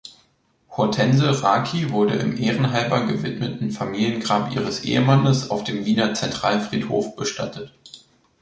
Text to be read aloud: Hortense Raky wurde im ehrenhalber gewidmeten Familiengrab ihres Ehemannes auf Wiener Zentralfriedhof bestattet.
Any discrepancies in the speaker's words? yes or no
yes